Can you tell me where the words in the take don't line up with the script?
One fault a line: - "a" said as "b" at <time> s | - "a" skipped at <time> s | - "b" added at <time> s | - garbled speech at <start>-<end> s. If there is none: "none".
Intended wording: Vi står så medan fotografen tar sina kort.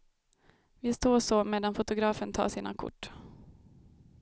none